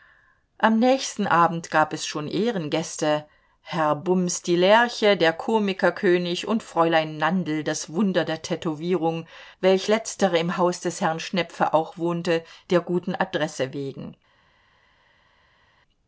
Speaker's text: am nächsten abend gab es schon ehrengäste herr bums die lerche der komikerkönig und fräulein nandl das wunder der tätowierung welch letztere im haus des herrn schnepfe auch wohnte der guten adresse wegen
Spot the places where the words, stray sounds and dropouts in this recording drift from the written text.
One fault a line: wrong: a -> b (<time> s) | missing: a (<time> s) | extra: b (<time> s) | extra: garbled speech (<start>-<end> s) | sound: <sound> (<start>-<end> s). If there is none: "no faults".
no faults